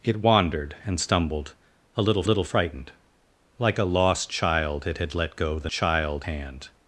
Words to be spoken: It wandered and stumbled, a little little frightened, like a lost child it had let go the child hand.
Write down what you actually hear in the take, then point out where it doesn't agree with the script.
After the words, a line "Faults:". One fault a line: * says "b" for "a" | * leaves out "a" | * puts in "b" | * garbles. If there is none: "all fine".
It wandered and stumbled, a little little frightened, like a lost child it had let go the child hand.
Faults:
all fine